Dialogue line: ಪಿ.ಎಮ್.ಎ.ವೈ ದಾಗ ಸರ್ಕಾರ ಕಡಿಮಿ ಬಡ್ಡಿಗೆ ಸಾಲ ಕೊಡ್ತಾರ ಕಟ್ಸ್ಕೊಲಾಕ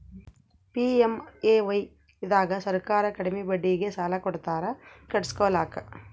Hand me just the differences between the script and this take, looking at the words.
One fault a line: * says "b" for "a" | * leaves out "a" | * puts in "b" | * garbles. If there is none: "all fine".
all fine